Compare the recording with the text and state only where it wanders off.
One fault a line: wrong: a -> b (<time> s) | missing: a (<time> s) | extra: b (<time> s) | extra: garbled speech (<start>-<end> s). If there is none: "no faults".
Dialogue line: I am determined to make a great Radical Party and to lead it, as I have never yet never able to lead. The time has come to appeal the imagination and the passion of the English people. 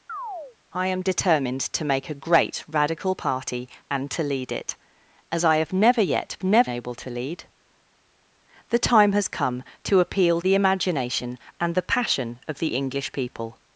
no faults